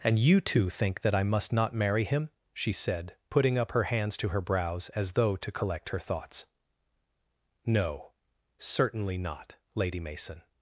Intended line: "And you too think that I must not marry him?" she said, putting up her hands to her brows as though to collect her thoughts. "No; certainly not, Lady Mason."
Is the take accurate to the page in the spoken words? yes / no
yes